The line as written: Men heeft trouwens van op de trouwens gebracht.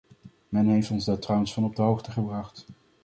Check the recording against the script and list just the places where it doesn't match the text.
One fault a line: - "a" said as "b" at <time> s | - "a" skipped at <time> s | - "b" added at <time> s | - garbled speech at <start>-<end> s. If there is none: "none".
- "ons daar" added at 0.9 s
- "trouwens" said as "hoogte" at 1.8 s